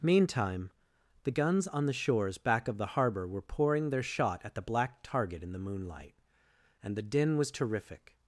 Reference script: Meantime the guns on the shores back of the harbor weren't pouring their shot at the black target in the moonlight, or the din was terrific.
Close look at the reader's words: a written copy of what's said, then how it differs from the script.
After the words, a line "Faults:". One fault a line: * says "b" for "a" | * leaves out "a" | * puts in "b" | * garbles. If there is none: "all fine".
Meantime the guns on the shores back of the harbor were pouring their shot at the black target in the moonlight, and the din was terrific.
Faults:
* says "were" for "weren't"
* says "and" for "or"